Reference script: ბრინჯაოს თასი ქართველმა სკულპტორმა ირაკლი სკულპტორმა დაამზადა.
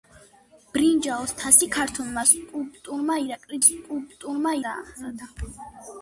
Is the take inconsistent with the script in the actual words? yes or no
no